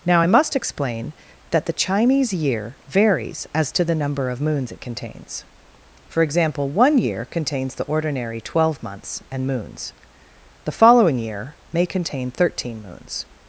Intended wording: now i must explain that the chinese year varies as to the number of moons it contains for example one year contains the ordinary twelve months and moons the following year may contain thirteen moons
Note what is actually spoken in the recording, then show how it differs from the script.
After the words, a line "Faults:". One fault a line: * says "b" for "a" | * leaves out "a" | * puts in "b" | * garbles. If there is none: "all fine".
now i must explain that the chinese year varies as to the number of moons it contains for example one year contains the ordinary twelve months and moons the following year may contain thirteen moons
Faults:
all fine